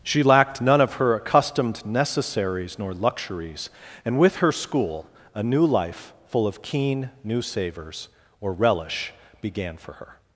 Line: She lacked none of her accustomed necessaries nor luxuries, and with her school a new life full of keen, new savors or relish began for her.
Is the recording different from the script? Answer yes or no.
no